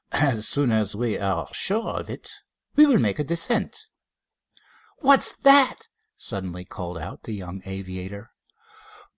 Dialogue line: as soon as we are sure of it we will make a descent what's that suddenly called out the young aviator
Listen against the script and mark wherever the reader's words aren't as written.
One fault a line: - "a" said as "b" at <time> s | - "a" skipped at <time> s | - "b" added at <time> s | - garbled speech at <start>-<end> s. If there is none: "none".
none